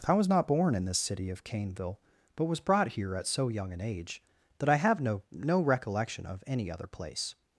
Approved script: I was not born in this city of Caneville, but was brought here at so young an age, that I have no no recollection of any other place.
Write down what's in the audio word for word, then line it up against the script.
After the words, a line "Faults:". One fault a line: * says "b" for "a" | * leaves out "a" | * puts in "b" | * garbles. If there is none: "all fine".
I was not born in this city of Caneville, but was brought here at so young an age, that I have no no recollection of any other place.
Faults:
all fine